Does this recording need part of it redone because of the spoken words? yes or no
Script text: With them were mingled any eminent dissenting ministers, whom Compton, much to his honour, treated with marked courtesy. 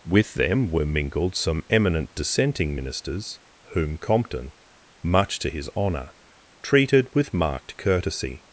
yes